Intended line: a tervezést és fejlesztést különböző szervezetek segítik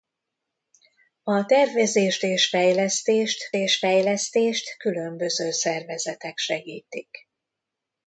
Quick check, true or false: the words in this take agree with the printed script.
false